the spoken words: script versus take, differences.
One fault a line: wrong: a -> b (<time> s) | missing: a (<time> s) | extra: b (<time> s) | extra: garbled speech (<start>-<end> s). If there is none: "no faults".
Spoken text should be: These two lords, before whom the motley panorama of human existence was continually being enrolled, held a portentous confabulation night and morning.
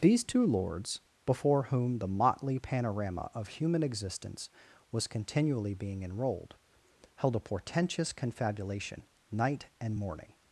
no faults